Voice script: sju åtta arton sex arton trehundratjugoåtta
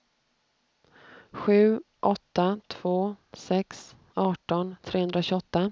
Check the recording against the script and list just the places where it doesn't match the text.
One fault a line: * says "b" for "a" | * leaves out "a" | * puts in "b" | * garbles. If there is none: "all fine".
* says "två" for "arton"